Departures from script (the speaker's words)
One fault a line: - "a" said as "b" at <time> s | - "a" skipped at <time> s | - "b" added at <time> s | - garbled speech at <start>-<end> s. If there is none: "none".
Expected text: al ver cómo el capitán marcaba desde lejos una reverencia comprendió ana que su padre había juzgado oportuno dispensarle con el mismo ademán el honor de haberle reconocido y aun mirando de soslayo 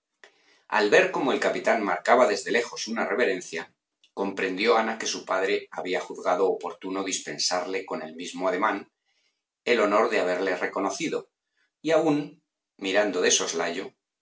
none